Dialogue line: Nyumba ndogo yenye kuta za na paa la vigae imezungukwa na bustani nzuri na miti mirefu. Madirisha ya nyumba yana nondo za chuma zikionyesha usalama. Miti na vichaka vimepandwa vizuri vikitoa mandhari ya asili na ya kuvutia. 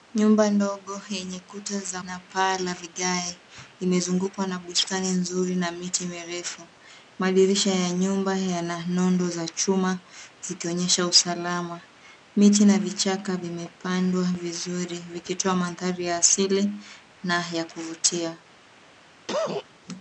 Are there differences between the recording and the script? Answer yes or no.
no